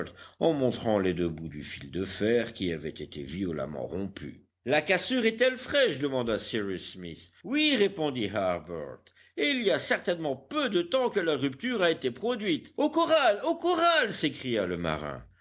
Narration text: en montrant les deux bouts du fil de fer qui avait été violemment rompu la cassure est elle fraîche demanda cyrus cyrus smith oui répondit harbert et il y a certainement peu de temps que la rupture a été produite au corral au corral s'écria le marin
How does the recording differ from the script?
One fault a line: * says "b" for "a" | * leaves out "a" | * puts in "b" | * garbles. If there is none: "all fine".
* leaves out "cyrus"